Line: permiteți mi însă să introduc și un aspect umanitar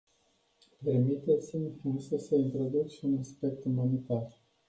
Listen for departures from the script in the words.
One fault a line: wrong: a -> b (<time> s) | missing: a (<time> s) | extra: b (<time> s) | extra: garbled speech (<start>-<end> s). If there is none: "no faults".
no faults